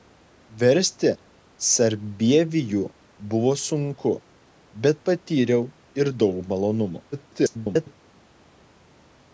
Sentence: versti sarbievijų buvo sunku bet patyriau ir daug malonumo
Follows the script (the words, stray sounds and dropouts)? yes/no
no